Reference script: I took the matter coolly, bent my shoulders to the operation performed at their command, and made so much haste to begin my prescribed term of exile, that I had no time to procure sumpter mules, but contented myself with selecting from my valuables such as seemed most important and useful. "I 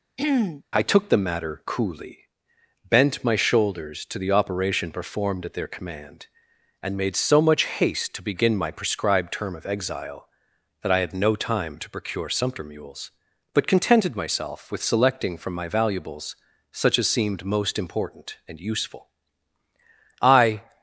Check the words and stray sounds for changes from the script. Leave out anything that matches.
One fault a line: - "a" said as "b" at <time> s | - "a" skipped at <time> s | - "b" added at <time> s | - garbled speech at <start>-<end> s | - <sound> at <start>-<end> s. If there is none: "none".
- throat clearing at 0.2-0.6 s